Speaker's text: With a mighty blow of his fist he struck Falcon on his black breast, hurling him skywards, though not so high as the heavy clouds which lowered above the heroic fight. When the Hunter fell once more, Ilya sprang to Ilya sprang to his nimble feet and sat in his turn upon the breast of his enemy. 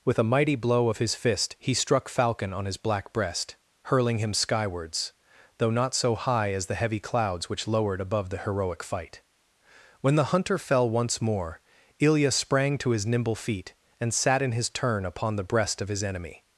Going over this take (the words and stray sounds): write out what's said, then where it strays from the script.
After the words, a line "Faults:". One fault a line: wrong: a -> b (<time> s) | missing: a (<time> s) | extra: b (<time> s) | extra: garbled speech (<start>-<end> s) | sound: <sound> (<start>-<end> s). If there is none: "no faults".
With a mighty blow of his fist he struck Falcon on his black breast, hurling him skywards, though not so high as the heavy clouds which lowered above the heroic fight. When the Hunter fell once more, Ilya sprang to his nimble feet and sat in his turn upon the breast of his enemy.
Faults:
missing: Ilya sprang to (12.9 s)